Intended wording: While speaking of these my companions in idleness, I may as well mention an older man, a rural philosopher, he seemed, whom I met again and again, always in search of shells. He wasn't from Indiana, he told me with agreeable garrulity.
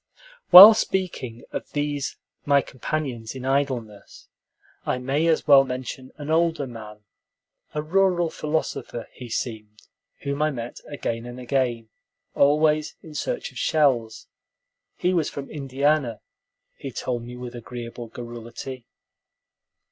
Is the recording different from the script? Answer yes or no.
yes